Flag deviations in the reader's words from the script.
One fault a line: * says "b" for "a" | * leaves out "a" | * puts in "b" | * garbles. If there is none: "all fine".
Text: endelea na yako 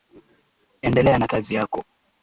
* puts in "kazi"